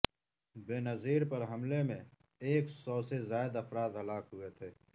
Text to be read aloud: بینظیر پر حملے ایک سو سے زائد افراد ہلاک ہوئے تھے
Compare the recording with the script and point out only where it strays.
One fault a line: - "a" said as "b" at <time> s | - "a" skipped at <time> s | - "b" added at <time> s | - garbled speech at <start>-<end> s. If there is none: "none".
- "میں" added at 1.8 s